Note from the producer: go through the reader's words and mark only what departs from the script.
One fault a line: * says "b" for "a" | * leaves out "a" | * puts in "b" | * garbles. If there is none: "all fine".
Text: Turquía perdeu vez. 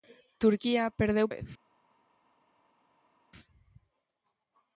all fine